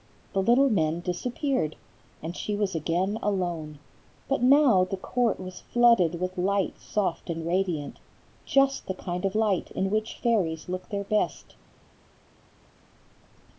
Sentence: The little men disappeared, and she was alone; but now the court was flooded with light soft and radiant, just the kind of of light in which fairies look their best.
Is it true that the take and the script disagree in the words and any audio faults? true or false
true